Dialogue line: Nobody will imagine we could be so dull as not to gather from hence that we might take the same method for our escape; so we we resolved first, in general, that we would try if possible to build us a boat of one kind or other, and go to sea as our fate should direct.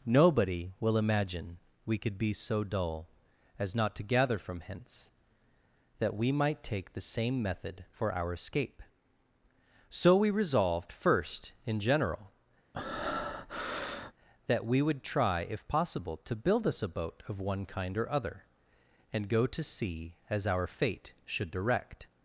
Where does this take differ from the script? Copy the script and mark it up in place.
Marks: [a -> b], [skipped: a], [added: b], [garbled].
Nobody will imagine we could be so dull as not to gather from hence that we might take the same method for our escape; so we [skipped: we] resolved first, in general, that we would try if possible to build us a boat of one kind or other, and go to sea as our fate should direct.